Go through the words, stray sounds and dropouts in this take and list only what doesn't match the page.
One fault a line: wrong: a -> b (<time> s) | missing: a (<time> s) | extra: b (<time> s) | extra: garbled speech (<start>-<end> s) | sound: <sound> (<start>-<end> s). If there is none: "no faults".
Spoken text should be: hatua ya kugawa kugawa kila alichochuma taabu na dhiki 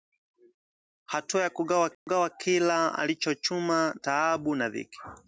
sound: dropout (1.9-2.1 s)